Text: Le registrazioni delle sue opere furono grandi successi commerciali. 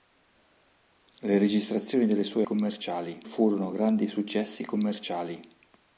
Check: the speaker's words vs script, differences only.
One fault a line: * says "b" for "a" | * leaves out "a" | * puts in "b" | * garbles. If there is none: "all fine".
* says "commerciali" for "opere"